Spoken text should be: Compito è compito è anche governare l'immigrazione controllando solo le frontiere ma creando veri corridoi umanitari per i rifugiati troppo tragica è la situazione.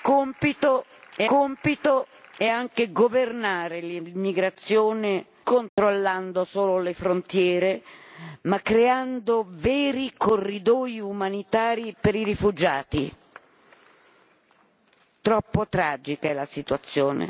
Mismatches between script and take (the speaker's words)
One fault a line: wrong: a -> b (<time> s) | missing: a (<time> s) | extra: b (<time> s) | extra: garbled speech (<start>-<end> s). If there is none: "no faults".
no faults